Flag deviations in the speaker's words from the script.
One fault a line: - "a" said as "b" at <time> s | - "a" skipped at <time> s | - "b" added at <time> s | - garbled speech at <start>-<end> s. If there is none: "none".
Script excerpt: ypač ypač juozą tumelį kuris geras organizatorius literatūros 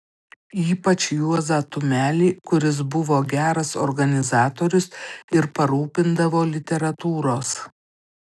- "ypač" skipped at 1.0 s
- "buvo" added at 3.0 s
- "ir parūpindavo" added at 5.4 s